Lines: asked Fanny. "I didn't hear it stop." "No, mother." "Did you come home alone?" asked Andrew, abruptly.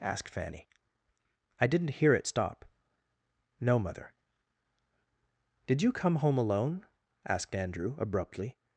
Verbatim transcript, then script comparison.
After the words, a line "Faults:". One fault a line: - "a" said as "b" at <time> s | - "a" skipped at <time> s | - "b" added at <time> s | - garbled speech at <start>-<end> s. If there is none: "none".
asked Fanny. "I didn't hear it stop." "No, mother." "Did you come home alone?" asked Andrew, abruptly.
Faults:
none